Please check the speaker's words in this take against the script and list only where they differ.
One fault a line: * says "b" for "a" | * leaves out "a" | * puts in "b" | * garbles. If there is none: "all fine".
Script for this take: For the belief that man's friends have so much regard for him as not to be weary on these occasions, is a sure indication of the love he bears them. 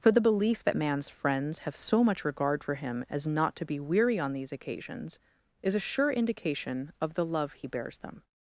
all fine